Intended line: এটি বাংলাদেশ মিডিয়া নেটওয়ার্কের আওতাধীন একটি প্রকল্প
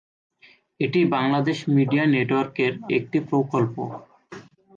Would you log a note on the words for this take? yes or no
yes